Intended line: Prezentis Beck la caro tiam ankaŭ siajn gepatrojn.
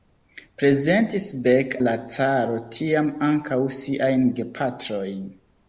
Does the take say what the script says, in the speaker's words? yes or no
yes